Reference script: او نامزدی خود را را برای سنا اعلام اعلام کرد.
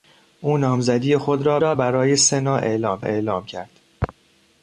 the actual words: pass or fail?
pass